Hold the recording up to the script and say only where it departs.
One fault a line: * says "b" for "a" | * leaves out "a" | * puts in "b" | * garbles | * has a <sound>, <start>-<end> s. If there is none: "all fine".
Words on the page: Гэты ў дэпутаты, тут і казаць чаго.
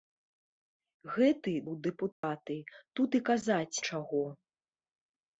* has a dropout, 2.1-2.2 s